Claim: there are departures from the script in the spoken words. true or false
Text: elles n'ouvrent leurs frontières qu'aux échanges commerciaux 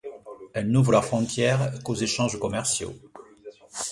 false